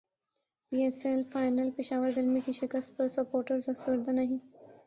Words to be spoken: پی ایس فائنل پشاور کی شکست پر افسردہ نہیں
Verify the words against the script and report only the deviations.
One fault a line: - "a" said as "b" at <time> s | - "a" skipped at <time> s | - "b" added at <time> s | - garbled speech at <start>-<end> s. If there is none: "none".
- "ایل" added at 1.1 s
- "زلمی" added at 2.1 s
- "سپورٹرز" added at 3.1 s